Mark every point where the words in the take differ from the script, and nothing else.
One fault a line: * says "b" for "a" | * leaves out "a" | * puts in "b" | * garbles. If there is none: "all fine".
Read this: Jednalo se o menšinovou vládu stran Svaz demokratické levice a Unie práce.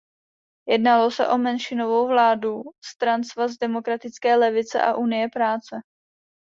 all fine